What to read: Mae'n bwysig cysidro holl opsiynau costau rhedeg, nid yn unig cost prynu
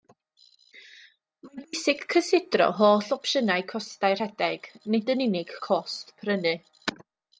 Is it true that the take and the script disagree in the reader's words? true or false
false